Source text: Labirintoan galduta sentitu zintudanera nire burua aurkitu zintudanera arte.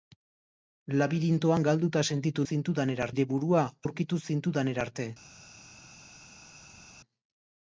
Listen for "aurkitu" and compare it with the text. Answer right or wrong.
right